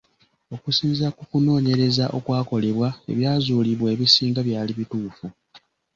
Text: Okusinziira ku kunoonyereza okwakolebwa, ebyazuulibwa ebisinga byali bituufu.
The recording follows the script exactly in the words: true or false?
true